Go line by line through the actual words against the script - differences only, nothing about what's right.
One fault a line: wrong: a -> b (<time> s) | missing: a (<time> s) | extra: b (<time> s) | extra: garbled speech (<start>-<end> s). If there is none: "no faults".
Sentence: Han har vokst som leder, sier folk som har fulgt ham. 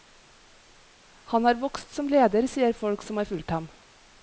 no faults